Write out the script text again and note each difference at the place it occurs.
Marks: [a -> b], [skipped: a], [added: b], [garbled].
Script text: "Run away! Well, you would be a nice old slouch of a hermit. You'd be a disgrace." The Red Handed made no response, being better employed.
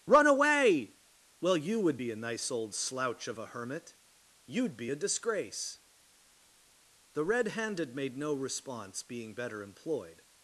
"Run away! Well, you would be a nice old slouch of a hermit. You'd be a disgrace." The Red Handed made no response, being better employed.